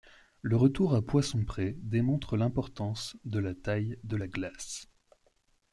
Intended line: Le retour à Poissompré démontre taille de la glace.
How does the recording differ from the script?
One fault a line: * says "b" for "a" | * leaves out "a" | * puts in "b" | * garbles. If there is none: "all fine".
* puts in "l'importance de la"